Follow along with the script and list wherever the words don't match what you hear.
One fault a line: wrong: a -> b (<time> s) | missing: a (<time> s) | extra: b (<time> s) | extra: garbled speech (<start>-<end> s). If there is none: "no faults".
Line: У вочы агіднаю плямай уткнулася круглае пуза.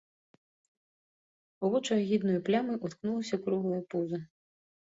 no faults